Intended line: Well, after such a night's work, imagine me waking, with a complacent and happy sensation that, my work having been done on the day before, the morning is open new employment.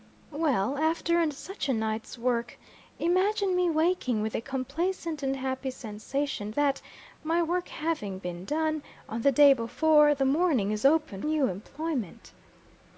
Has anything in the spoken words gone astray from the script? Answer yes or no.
no